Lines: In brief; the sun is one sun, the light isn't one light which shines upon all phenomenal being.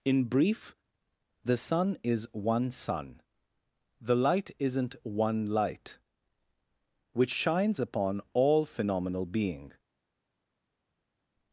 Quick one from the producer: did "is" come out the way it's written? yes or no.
yes